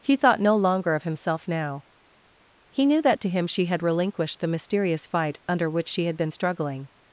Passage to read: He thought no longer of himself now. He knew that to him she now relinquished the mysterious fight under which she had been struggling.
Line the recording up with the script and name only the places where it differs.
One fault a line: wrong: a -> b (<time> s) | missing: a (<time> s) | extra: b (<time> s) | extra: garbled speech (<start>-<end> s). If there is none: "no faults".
wrong: now -> had (3.6 s)